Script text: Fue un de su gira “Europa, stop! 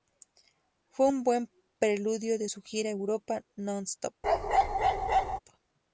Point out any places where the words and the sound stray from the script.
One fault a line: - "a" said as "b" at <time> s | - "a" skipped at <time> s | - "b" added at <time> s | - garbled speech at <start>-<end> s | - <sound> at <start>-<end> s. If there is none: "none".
- "buen preludio" added at 1.2 s
- "non" added at 3.5 s
- bark at 4.2-5.4 s